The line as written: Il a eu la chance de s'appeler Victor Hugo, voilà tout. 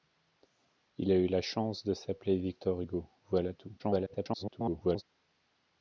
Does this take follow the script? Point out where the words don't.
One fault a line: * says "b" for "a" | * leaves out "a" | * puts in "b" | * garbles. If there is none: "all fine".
* garbles